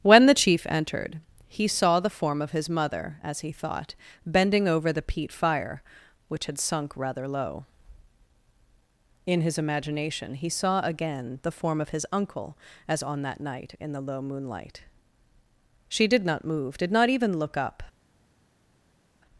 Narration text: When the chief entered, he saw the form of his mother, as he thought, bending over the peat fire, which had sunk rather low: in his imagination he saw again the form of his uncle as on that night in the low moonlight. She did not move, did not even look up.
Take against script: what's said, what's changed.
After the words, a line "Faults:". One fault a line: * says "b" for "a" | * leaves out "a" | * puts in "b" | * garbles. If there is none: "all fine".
When the chief entered, he saw the form of his mother, as he thought, bending over the peat fire, which had sunk rather low: in his imagination he saw again the form of his uncle as on that night in the low moonlight. She did not move, did not even look up.
Faults:
all fine